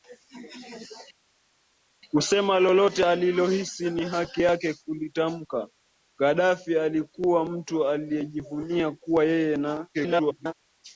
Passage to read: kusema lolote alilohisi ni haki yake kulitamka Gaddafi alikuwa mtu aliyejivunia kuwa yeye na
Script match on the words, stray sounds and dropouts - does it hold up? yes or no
no